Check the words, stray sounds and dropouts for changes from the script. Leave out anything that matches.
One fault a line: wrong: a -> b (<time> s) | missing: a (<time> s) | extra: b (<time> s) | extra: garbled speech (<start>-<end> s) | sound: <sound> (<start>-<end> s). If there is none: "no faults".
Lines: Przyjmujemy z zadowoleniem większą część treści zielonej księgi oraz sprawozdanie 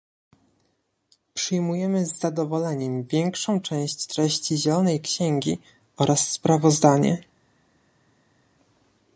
no faults